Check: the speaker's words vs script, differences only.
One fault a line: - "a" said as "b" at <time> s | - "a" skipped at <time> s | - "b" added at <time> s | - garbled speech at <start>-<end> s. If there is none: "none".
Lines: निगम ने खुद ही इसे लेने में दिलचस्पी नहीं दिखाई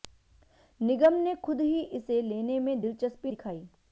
- "नहीं" skipped at 3.3 s